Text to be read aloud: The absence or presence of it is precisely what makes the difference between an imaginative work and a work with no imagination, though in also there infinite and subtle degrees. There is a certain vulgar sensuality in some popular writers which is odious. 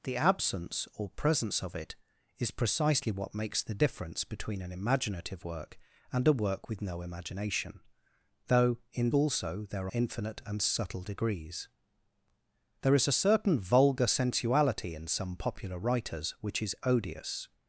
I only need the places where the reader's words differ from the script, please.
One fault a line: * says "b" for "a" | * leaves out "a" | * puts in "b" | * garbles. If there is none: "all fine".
all fine